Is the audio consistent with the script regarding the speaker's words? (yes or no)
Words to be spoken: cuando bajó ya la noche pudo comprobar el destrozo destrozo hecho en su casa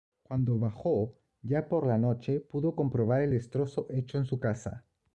no